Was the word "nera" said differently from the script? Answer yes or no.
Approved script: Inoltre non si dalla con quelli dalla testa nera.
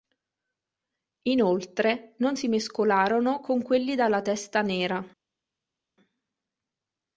no